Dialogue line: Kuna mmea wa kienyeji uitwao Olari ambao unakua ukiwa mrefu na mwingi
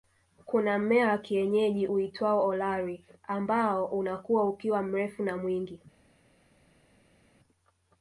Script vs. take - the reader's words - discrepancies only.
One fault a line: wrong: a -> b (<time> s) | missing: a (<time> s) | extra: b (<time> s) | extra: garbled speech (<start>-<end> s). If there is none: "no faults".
no faults